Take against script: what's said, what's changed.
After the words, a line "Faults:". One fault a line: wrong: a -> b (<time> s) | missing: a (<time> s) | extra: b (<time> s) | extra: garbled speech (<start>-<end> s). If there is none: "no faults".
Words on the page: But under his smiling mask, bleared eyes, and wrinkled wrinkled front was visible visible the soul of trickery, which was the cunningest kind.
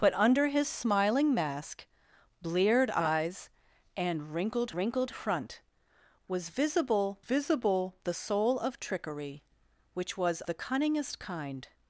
But under his smiling mask, bleared eyes, and wrinkled wrinkled front was visible visible the soul of trickery, which was the cunningest kind.
Faults:
no faults